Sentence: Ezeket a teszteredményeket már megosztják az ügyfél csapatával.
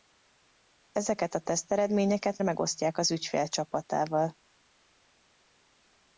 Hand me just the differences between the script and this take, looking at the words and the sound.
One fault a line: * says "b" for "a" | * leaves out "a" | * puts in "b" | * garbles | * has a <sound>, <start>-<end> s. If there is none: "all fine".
* leaves out "már"